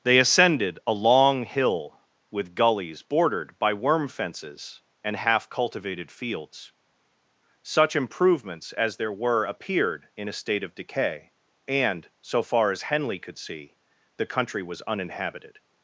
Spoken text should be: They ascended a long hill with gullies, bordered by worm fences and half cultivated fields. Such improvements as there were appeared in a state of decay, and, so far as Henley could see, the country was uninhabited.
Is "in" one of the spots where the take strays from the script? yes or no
no